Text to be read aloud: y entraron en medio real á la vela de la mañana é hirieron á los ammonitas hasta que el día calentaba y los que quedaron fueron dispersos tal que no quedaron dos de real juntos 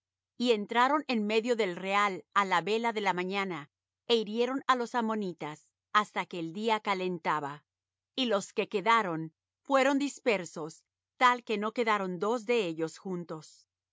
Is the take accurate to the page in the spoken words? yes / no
no